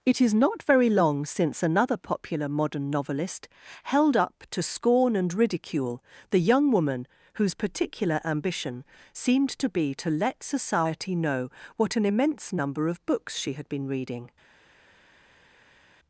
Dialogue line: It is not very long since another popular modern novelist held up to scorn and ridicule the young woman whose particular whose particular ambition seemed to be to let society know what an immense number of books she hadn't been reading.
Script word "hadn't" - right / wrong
wrong